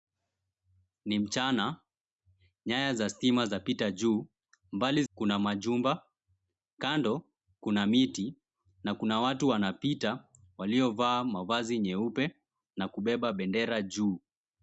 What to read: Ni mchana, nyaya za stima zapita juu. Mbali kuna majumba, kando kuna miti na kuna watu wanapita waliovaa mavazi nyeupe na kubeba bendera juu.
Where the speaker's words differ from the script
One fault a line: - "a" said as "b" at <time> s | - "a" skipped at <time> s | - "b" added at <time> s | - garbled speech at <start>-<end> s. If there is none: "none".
none